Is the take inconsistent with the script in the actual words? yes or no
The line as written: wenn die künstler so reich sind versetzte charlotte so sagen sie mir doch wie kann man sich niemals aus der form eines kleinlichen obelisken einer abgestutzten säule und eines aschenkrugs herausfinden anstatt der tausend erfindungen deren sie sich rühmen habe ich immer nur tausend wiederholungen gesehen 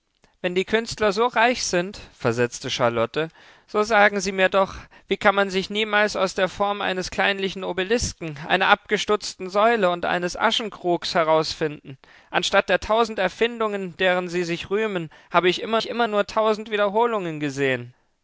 yes